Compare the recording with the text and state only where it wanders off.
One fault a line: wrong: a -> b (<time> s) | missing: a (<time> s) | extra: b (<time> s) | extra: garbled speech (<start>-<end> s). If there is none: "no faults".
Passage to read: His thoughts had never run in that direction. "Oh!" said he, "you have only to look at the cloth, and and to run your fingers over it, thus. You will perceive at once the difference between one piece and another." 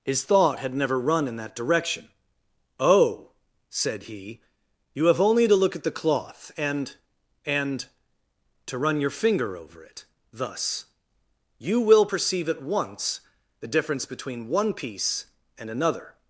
wrong: thoughts -> thought (0.2 s)
wrong: fingers -> finger (9.1 s)